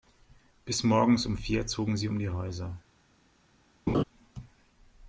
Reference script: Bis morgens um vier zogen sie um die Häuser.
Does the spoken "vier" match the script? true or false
true